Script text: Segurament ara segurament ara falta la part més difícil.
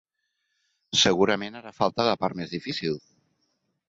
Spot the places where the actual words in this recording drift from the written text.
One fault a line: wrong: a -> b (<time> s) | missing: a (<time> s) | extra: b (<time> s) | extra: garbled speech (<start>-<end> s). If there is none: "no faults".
missing: segurament ara (1.7 s)